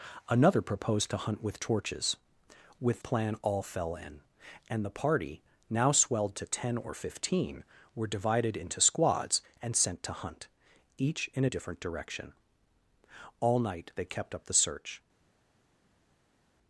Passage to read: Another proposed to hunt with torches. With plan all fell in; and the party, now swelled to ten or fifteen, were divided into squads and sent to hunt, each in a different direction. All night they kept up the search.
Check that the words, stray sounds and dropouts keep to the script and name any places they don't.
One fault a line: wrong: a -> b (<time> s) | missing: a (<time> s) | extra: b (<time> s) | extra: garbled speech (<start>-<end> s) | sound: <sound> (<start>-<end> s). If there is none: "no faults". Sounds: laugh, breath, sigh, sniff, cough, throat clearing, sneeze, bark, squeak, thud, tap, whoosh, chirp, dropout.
no faults